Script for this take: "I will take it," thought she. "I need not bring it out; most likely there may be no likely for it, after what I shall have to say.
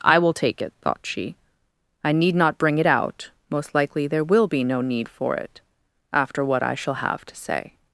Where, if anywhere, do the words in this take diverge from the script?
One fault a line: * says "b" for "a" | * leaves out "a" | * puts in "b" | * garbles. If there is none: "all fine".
* says "will" for "may"
* says "need" for "likely"